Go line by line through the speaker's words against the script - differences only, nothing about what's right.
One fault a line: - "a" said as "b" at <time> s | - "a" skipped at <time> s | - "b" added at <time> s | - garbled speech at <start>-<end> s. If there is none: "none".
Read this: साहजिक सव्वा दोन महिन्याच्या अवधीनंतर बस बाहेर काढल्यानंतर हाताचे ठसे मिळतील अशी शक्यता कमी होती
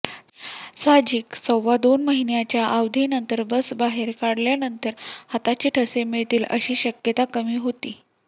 none